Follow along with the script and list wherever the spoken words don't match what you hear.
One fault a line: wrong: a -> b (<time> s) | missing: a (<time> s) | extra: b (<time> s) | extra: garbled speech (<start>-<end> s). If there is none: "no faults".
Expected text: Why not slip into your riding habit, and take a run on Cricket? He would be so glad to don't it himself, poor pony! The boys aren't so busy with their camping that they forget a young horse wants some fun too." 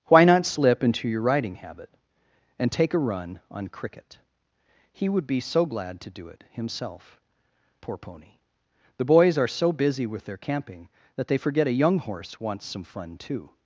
wrong: don't -> do (6.1 s)
wrong: aren't -> are (9.4 s)